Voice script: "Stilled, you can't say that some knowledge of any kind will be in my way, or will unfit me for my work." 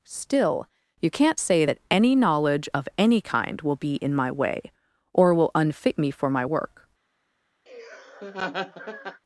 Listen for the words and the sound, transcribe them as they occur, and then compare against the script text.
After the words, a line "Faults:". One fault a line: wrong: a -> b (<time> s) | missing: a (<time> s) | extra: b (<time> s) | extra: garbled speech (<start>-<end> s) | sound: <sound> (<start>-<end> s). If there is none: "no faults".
"Still, you can't say that any knowledge of any kind will be in my way, or will unfit me for my work."
Faults:
wrong: Stilled -> Still (0.0 s)
wrong: some -> any (1.9 s)
sound: laugh (7.7-9.2 s)